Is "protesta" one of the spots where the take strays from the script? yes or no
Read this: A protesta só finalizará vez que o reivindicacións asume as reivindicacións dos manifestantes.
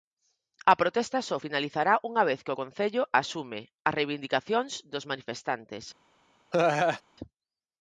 no